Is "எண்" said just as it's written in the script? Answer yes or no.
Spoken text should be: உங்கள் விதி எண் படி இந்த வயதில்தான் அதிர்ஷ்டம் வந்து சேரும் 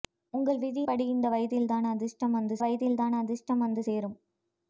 no